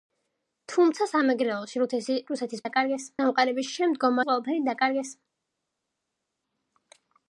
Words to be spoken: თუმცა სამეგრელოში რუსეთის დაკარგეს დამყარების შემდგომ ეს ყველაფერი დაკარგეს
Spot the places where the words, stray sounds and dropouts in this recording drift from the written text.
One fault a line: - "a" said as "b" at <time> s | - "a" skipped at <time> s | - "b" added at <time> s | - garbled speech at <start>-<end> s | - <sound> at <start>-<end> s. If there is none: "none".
none